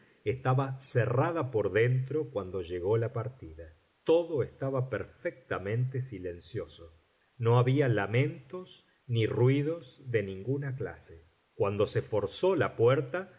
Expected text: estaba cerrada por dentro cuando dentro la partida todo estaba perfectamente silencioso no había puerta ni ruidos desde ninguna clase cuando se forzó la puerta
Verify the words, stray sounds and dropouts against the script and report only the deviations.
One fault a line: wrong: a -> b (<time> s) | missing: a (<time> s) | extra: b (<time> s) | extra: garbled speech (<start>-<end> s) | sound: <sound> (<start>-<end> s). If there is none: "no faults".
wrong: dentro -> llegó (2.6 s)
wrong: puerta -> lamentos (7.9 s)
wrong: desde -> de (10.1 s)